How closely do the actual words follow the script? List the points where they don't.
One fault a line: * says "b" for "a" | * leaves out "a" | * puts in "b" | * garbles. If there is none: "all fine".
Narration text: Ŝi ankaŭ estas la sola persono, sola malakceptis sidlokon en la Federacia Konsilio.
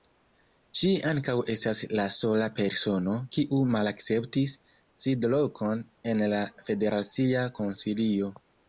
* says "kiu" for "sola"